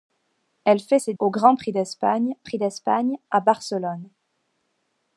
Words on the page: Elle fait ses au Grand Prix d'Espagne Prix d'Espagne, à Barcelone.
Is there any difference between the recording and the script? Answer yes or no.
no